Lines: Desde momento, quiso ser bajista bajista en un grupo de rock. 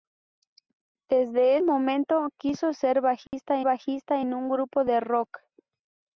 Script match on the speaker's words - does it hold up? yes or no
yes